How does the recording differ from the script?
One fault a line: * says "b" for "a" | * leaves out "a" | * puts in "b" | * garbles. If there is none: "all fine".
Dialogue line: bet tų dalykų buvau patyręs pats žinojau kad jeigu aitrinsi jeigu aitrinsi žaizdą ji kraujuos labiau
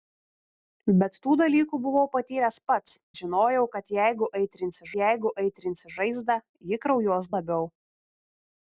all fine